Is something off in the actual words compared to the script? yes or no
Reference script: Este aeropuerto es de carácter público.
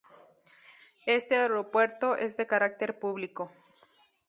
no